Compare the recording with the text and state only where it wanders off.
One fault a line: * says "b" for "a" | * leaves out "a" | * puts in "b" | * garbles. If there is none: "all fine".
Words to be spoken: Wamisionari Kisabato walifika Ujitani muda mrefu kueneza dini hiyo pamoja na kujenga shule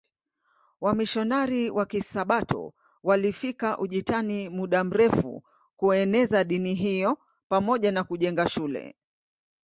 * puts in "wa"